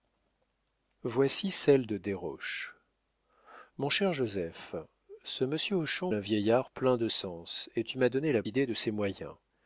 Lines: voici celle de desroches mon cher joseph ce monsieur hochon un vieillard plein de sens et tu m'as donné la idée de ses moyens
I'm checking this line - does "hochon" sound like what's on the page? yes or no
yes